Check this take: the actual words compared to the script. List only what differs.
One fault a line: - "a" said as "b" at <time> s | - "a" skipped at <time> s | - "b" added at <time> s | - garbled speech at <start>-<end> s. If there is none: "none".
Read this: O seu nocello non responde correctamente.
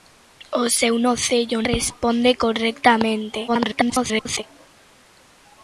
- "non" skipped at 1.6 s
- garbled speech at 3.5-4.4 s